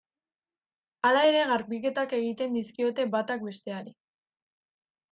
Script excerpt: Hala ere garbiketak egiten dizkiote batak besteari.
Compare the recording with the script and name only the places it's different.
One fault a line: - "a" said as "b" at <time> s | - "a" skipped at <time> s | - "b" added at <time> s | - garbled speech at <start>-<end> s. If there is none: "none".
none